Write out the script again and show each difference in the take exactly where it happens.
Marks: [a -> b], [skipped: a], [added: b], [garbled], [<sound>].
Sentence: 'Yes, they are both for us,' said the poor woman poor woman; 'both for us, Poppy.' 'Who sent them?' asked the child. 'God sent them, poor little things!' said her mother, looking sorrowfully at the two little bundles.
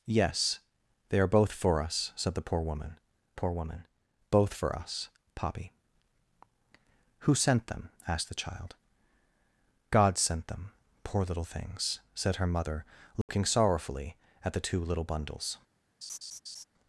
'Yes, they are both for us,' said the poor woman poor woman; 'both for us, Poppy.' 'Who sent them?' asked the child. 'God sent them, poor little things!' said her mother, looking [dropout] sorrowfully at the two little bundles. [laugh]